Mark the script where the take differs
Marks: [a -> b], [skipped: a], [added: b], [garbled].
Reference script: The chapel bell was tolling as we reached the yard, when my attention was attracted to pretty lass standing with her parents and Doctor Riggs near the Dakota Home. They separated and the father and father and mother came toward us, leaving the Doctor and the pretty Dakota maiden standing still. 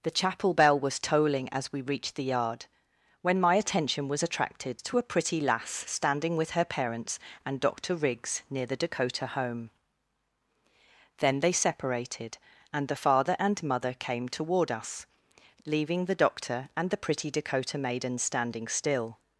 The chapel bell was tolling as we reached the yard, when my attention was attracted to [added: a] pretty lass standing with her parents and Doctor Riggs near the Dakota Home. [added: Then] They separated and the father and [skipped: father and] mother came toward us, leaving the Doctor and the pretty Dakota maiden standing still.